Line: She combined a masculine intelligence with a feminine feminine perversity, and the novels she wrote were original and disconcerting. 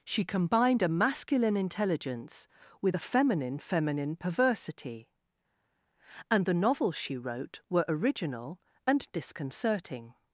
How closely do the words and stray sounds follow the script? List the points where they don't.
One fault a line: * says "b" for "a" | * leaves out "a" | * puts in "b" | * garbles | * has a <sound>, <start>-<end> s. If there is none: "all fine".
all fine